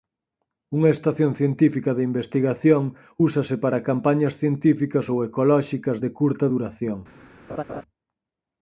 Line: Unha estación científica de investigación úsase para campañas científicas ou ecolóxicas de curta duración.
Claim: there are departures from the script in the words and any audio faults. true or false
true